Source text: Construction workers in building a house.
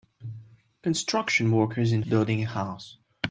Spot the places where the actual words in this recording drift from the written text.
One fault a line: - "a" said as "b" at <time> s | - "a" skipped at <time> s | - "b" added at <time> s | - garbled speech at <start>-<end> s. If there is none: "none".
none